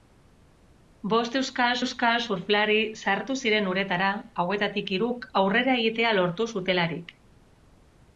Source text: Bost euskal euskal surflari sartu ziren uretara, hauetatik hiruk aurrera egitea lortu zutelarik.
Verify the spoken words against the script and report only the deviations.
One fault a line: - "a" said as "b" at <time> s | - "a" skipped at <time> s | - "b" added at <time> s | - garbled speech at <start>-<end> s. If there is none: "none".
none